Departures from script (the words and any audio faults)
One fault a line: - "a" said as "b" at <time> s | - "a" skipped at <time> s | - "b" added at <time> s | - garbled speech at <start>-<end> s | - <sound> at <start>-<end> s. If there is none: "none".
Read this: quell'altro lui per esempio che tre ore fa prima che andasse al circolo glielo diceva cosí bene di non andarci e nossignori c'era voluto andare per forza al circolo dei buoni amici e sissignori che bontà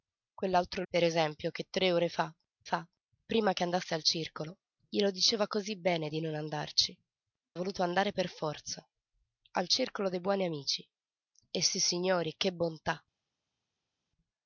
- "lui" skipped at 0.8 s
- "fa" added at 2.6 s
- "e nossignori c'era" skipped at 7.0 s